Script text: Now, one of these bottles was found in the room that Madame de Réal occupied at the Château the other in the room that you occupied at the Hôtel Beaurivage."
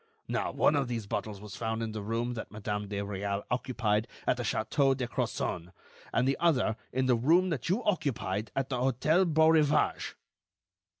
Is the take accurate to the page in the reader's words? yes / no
no